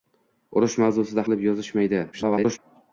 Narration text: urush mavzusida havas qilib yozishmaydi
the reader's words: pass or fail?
fail